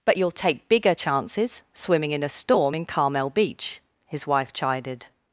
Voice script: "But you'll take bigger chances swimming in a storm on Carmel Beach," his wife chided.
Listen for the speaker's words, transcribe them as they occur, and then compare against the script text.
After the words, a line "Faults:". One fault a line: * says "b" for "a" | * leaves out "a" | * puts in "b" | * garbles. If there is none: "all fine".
"But you'll take bigger chances swimming in a storm in Carmel Beach," his wife chided.
Faults:
* says "in" for "on"